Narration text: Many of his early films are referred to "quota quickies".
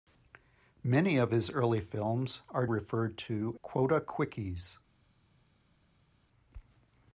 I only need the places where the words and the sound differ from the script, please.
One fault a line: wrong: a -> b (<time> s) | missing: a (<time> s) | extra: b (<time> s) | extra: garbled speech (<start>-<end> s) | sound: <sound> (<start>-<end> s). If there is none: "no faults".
no faults